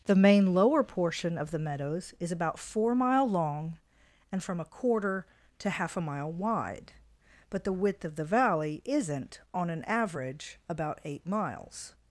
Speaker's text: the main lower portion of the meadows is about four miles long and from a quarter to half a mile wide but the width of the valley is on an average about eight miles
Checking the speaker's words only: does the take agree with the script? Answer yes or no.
no